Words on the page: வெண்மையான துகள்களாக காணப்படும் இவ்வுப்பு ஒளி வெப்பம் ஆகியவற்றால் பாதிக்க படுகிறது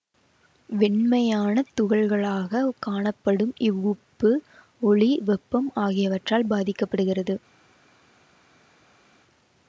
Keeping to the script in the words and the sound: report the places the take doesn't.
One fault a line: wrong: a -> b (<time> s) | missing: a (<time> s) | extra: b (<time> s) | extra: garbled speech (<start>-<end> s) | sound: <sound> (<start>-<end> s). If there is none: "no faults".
no faults